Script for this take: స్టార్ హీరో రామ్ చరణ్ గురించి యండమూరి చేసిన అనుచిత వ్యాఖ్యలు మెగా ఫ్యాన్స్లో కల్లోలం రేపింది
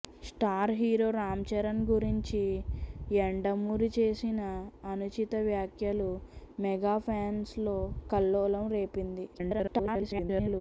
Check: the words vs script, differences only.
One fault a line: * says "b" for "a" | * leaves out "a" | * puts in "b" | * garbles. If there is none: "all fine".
* garbles